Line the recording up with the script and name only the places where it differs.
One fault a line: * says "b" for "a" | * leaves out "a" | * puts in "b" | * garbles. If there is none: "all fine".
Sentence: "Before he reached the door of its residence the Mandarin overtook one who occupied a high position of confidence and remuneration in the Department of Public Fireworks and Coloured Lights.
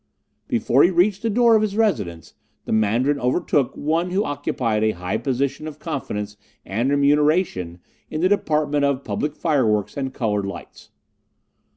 * says "his" for "its"